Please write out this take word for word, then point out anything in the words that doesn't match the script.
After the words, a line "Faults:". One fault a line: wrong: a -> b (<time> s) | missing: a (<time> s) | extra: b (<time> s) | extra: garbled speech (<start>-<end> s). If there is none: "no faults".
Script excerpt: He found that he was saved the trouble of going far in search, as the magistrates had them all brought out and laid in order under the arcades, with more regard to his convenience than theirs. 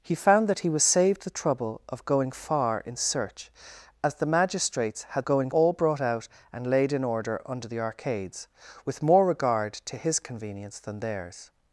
He found that he was saved the trouble of going far in search, as the magistrates had going all brought out and laid in order under the arcades, with more regard to his convenience than theirs.
Faults:
wrong: them -> going (5.2 s)